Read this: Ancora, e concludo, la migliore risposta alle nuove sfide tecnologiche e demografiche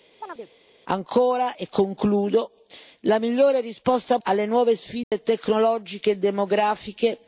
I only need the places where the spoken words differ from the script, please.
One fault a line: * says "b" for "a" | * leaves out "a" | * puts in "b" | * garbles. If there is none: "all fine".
all fine